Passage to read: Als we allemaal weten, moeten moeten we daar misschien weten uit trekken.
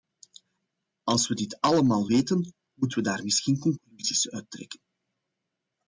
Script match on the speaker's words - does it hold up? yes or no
no